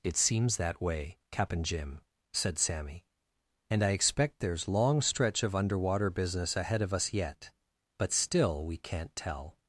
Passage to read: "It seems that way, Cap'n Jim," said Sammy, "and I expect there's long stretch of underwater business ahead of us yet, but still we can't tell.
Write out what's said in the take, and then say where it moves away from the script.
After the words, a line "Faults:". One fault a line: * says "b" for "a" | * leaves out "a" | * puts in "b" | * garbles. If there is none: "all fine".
"It seems that way, Cap'n Jim," said Sammy, "and I expect there's long stretch of underwater business ahead of us yet, but still we can't tell.
Faults:
all fine